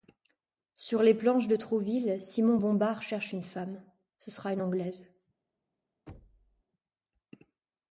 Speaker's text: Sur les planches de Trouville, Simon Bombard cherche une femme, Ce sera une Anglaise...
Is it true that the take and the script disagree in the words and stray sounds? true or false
true